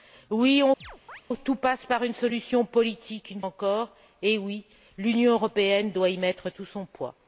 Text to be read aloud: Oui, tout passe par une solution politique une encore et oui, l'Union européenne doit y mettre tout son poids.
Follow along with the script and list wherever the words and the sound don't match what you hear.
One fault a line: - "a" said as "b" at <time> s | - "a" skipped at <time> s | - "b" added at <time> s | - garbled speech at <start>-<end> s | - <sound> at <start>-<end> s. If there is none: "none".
- chirp at 0.8-1.2 s